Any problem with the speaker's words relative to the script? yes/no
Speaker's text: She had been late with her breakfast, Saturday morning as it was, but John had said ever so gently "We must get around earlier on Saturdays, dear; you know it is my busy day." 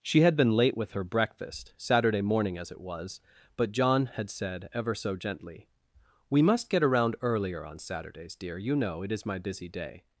no